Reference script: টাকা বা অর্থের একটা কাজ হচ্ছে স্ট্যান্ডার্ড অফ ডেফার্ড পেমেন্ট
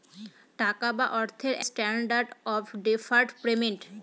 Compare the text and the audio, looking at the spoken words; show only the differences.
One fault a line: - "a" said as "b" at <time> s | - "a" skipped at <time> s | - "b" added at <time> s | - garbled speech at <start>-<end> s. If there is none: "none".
- "একটা কাজ হচ্ছে" skipped at 1.6 s